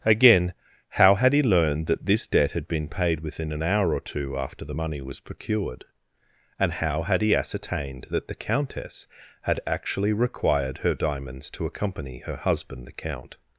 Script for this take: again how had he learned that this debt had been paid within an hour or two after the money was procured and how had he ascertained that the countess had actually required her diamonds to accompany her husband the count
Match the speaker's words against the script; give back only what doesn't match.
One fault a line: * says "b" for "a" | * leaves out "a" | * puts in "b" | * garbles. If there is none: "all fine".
all fine